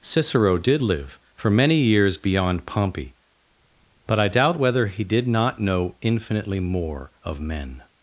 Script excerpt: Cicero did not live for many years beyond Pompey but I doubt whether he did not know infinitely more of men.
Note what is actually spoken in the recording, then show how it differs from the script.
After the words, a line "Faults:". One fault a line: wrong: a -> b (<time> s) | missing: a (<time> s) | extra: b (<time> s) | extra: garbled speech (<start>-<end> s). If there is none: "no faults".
Cicero did live for many years beyond Pompey but I doubt whether he did not know infinitely more of men.
Faults:
missing: not (0.8 s)